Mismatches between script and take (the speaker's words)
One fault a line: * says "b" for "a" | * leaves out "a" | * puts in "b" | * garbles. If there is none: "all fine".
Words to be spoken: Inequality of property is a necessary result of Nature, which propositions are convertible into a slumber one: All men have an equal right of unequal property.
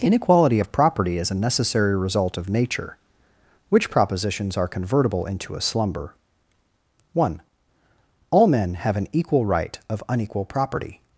all fine